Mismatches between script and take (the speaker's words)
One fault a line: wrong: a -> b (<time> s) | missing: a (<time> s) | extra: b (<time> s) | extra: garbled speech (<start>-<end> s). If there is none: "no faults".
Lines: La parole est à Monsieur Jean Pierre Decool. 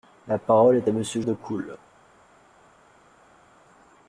missing: Jean Pierre (1.2 s)